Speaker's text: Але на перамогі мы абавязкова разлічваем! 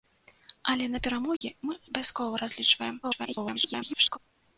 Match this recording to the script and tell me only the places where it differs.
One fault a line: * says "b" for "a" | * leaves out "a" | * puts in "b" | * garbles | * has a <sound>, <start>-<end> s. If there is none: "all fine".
* has a dropout, 1.4-1.4 s
* garbles